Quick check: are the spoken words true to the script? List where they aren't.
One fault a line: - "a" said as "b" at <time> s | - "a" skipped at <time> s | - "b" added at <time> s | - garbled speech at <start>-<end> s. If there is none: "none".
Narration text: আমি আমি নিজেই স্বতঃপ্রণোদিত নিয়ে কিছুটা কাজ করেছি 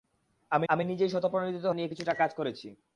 none